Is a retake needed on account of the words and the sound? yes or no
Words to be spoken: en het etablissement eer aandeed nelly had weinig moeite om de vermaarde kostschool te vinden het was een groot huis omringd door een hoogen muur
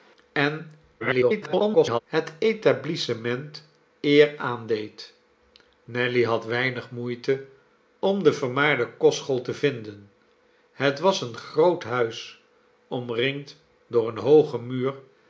yes